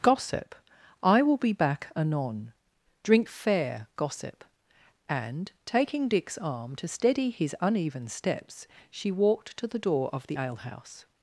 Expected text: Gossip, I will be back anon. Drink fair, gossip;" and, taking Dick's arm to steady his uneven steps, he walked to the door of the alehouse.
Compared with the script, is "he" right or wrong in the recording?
wrong